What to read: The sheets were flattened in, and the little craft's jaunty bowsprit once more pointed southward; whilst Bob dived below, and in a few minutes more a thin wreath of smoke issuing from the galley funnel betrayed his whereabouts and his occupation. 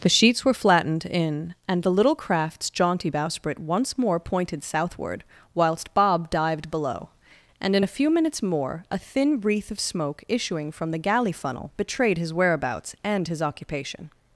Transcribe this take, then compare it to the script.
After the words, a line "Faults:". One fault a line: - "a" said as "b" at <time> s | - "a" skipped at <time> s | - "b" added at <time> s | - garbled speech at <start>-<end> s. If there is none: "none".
The sheets were flattened in, and the little craft's jaunty bowsprit once more pointed southward; whilst Bob dived below, and in a few minutes more a thin wreath of smoke issuing from the galley funnel betrayed his whereabouts and his occupation.
Faults:
none